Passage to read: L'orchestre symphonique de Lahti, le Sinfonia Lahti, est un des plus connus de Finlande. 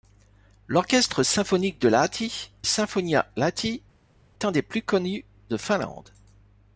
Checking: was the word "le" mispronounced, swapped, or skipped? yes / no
yes